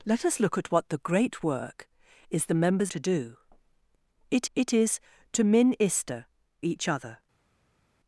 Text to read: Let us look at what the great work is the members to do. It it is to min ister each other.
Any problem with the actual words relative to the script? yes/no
no